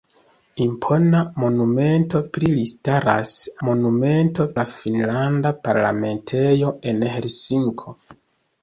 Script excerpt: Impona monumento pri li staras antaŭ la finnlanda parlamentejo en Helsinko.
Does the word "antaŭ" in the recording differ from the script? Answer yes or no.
yes